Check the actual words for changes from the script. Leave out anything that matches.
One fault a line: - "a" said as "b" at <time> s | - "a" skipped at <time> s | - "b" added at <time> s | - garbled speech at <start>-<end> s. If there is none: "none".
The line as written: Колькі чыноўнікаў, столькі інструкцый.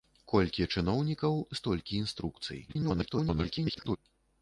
- garbled speech at 2.7-4.0 s